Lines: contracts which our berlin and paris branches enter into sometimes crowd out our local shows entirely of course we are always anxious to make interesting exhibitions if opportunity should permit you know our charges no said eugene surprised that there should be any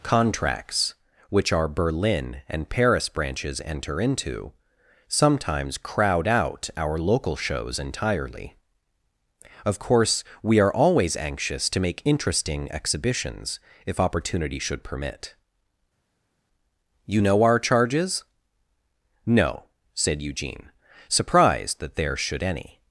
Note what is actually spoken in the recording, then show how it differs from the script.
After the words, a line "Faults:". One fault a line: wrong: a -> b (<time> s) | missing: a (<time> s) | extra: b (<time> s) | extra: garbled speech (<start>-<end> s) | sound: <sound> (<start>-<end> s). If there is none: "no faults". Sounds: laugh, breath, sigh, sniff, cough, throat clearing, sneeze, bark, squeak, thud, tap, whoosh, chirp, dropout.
contracts which our berlin and paris branches enter into sometimes crowd out our local shows entirely of course we are always anxious to make interesting exhibitions if opportunity should permit you know our charges no said eugene surprised that there should any
Faults:
missing: be (22.4 s)